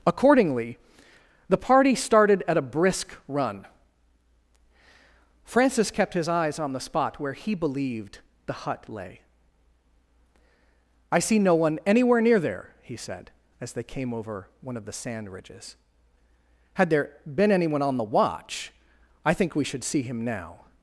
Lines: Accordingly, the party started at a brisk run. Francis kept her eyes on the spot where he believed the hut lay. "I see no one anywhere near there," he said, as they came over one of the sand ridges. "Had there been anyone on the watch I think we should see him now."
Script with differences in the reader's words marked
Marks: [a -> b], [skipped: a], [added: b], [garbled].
Accordingly, the party started at a brisk run. Francis kept [her -> his] eyes on the spot where he believed the hut lay. "I see no one anywhere near there," he said, as they came over one of the sand ridges. "Had there been anyone on the watch I think we should see him now."